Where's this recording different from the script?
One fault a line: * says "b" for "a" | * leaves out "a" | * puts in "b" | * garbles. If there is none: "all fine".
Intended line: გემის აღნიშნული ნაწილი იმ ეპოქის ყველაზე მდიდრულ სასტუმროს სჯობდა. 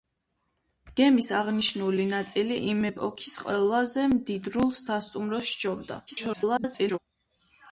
* garbles